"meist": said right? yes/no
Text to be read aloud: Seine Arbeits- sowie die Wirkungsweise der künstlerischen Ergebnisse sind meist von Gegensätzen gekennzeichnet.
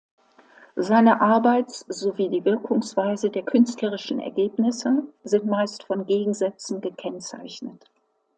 yes